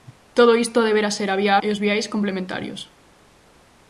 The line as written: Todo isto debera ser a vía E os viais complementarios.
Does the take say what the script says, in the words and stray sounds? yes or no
yes